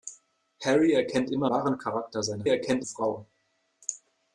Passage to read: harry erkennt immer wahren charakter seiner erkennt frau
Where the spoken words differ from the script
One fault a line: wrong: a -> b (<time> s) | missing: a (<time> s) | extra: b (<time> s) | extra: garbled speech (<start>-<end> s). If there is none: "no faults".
no faults